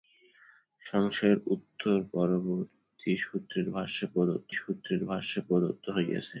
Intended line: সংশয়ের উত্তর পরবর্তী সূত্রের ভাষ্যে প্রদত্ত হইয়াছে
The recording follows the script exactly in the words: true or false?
false